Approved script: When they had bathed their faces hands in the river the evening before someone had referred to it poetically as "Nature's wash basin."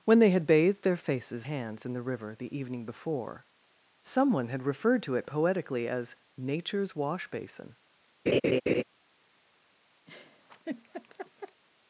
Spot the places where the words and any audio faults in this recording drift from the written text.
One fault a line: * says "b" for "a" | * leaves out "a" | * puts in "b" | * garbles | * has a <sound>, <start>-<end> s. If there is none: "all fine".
* has a laugh, 8.3-8.8 s
* has a laugh, 10.1-11.6 s